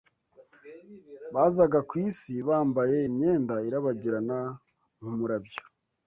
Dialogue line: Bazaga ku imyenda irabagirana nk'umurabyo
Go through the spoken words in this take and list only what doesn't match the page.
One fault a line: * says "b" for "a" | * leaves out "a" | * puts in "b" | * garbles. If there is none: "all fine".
* puts in "isi bambaye"